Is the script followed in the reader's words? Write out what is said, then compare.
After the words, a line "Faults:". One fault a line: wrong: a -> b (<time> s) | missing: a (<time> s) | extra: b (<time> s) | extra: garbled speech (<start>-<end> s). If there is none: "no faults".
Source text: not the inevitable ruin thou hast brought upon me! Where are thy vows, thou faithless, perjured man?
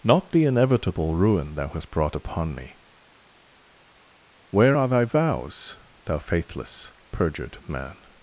not the inevitable ruin thou hast brought upon me! Where are thy vows, thou faithless, perjured man?
Faults:
no faults